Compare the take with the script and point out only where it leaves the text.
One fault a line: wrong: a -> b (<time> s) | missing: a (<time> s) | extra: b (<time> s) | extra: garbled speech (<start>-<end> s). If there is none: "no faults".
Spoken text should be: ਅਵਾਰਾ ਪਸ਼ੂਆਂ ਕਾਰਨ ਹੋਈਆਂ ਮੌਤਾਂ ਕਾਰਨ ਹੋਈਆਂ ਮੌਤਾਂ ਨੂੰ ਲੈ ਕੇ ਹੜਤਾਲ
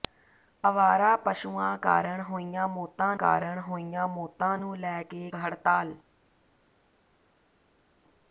no faults